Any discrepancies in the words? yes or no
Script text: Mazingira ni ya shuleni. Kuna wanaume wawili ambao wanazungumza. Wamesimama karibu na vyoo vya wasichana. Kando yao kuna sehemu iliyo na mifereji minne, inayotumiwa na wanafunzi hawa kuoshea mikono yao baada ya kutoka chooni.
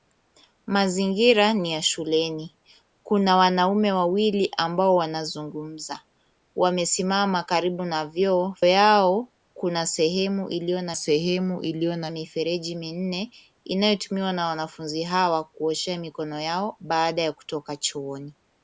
yes